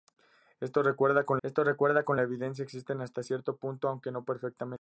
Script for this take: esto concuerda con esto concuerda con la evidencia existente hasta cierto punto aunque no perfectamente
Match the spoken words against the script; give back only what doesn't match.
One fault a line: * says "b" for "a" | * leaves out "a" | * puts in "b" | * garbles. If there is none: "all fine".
all fine